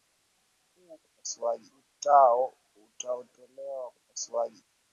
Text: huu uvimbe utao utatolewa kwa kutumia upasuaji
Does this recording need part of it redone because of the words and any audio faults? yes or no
yes